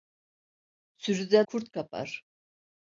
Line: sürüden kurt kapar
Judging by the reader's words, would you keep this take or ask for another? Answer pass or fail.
pass